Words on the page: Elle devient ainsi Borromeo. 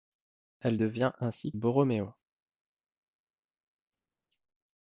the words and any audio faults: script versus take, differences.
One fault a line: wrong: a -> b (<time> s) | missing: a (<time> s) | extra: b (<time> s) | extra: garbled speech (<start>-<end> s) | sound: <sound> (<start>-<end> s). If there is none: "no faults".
no faults